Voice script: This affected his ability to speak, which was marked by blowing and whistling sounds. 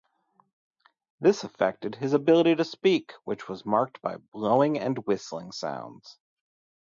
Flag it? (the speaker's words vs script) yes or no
no